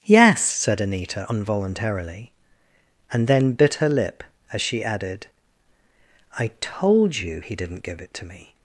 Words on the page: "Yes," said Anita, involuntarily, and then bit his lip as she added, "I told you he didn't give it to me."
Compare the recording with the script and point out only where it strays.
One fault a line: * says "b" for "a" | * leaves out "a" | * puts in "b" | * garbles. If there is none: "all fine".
* says "her" for "his"